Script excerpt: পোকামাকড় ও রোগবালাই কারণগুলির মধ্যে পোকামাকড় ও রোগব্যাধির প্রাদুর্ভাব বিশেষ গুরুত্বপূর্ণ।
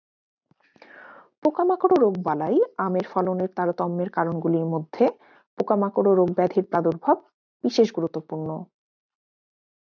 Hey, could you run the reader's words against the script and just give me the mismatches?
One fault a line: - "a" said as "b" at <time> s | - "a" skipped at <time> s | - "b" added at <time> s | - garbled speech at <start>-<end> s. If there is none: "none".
- "আমের ফলনের তারতম্যের" added at 2.8 s